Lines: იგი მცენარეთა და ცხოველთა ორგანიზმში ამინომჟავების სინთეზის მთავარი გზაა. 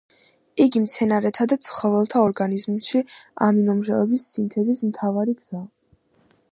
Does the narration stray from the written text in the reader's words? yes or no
no